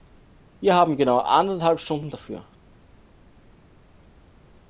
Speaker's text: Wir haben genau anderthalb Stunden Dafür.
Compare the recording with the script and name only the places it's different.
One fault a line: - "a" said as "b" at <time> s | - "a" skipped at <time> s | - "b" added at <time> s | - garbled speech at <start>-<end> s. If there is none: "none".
none